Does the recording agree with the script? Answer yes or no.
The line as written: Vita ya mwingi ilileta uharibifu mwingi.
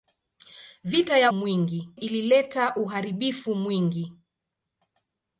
yes